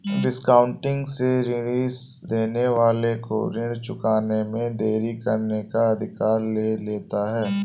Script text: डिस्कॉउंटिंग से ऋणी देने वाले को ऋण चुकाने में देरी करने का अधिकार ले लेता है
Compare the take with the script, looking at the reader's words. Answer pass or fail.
pass